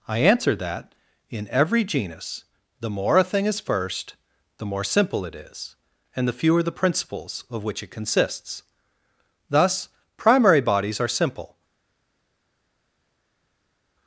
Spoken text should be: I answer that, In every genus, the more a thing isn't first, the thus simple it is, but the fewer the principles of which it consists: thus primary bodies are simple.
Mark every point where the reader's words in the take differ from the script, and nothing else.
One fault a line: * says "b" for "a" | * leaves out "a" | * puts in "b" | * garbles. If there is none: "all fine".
* says "is" for "isn't"
* says "more" for "thus"
* says "and" for "but"